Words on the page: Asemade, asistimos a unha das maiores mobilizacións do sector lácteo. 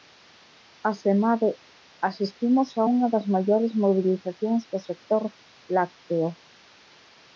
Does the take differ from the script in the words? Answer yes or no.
no